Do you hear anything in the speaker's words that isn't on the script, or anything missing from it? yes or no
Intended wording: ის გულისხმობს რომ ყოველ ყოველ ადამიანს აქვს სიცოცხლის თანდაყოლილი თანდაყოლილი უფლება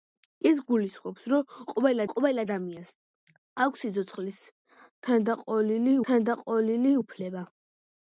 no